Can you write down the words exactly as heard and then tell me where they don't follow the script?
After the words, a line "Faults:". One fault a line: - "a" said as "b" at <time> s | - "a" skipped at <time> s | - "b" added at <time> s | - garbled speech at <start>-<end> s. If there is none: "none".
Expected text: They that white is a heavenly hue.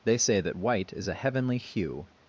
They say that white is a heavenly hue.
Faults:
- "say" added at 0.2 s